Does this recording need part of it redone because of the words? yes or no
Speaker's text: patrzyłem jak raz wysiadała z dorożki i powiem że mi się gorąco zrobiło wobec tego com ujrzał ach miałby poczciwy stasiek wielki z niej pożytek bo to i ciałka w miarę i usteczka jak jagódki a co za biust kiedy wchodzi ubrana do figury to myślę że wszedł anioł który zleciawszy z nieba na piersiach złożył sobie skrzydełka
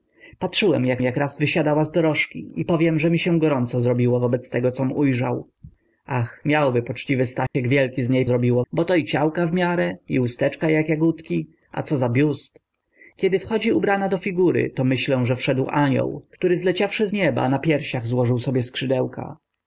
yes